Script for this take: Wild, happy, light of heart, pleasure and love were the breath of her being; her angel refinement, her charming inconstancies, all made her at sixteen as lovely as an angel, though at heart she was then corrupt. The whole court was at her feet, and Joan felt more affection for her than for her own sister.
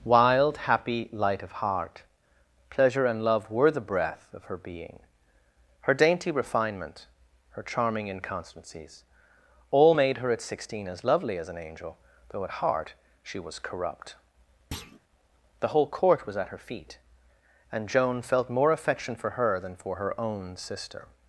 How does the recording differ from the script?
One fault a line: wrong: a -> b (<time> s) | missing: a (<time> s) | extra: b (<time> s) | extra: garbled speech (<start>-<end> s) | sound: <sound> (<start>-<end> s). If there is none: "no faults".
wrong: angel -> dainty (5.9 s)
missing: then (13.6 s)
sound: thud (14.7-15.0 s)